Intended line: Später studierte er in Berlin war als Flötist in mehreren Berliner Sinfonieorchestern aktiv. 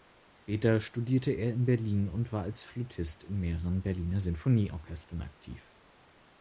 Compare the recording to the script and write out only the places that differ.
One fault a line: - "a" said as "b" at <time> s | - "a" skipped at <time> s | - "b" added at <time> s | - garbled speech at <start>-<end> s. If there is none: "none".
- "und" added at 2.1 s